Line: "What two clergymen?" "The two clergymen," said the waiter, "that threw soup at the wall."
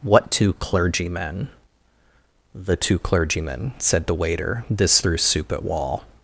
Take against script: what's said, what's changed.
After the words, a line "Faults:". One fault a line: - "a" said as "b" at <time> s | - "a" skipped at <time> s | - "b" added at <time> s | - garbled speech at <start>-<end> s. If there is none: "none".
"What two clergymen?" "The two clergymen," said the waiter, "this threw soup at wall."
Faults:
- "that" said as "this" at 4.7 s
- "the" skipped at 5.6 s